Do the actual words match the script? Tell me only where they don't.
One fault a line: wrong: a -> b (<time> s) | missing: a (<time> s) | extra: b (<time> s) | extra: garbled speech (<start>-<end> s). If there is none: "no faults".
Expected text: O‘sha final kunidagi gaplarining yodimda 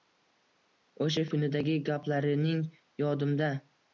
missing: final (1.2 s)